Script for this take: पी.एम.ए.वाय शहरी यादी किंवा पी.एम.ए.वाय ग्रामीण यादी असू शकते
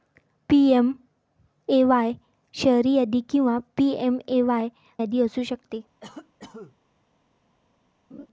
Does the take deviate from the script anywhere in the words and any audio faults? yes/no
yes